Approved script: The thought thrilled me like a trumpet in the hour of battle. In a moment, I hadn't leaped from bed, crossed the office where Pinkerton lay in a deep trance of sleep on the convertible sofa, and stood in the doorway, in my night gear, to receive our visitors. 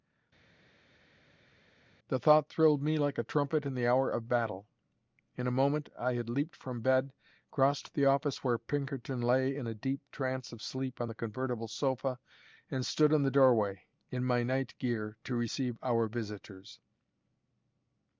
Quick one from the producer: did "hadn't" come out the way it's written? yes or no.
no